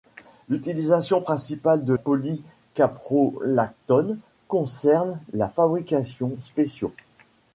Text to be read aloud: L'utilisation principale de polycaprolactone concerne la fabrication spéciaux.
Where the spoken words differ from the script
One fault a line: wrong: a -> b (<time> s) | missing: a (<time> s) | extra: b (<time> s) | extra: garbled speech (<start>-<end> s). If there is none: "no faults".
no faults